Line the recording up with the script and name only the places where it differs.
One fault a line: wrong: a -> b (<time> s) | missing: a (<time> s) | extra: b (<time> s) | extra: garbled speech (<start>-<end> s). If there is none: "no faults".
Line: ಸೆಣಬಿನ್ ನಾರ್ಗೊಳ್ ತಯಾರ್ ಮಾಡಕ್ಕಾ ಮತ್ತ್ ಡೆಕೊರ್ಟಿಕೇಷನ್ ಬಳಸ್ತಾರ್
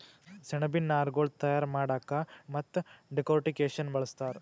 no faults